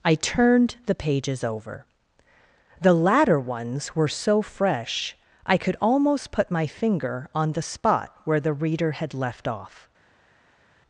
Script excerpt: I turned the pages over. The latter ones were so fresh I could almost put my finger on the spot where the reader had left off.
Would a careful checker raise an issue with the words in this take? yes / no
no